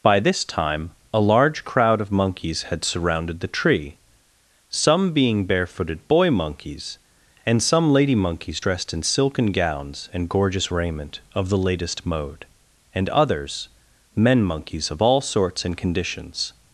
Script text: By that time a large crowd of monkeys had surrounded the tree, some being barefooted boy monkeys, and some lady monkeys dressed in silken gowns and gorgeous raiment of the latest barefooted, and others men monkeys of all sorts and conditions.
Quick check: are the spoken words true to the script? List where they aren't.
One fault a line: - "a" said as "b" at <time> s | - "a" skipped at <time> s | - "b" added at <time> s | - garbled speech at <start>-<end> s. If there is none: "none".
- "that" said as "this" at 0.2 s
- "barefooted" said as "mode" at 12.1 s